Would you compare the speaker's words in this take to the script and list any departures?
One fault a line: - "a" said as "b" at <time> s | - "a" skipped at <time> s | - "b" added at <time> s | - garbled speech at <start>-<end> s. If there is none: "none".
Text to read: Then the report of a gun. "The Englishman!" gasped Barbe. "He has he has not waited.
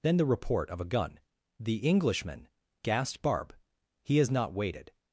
- "he has" skipped at 4.3 s